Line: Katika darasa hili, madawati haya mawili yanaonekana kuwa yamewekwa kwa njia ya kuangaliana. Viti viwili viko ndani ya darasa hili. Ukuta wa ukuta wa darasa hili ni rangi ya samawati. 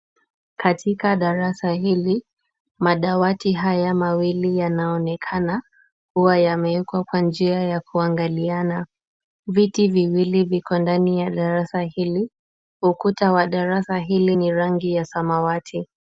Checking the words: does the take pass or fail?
fail